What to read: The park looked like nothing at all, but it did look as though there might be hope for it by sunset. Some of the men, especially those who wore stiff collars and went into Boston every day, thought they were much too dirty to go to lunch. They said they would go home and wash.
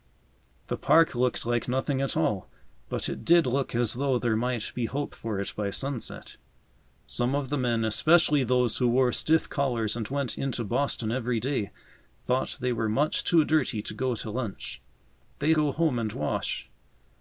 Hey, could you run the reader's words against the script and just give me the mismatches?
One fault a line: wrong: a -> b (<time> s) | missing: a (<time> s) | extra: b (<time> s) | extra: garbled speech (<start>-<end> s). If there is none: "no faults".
missing: said they would (15.5 s)